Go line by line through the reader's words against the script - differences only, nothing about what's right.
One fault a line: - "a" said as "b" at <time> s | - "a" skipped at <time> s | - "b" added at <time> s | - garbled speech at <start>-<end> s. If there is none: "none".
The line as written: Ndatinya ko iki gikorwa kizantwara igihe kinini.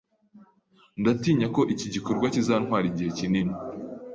none